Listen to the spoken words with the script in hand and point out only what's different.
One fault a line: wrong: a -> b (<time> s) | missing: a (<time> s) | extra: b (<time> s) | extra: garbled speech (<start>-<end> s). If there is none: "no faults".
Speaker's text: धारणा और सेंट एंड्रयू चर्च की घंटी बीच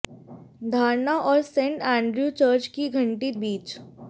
no faults